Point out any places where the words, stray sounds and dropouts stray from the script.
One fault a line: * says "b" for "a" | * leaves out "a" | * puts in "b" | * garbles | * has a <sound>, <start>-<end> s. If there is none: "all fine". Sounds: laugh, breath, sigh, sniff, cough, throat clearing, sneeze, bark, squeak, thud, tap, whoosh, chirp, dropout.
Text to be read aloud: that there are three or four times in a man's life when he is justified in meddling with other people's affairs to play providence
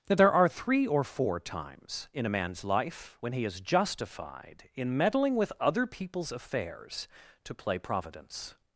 all fine